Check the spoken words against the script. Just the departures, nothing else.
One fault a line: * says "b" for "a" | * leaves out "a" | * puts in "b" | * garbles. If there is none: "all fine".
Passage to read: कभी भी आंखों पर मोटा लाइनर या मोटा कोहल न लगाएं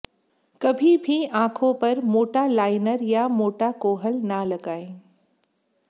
all fine